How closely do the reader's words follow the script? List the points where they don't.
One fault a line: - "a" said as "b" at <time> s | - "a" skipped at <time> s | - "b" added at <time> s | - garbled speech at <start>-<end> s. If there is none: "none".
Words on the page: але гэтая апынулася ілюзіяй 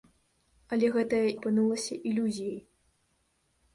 none